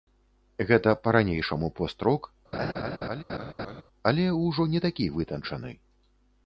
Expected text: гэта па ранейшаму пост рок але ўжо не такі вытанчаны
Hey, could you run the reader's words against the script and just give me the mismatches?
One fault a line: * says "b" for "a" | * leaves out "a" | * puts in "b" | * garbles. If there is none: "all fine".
all fine